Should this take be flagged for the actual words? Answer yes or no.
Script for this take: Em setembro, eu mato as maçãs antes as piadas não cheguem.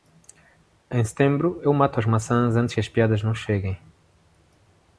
no